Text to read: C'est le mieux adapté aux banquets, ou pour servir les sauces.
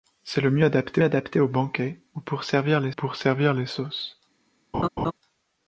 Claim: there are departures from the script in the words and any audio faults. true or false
true